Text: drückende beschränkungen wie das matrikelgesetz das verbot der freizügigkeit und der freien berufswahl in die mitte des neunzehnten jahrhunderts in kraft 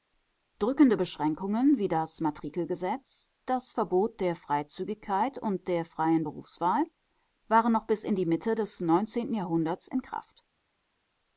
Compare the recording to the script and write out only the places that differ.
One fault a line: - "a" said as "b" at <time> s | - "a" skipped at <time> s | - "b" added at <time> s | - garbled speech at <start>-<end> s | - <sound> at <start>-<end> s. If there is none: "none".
- "waren noch bis" added at 7.5 s